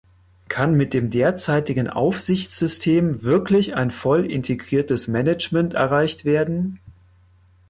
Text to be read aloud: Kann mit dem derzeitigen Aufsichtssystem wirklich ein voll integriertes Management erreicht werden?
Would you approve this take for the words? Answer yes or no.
yes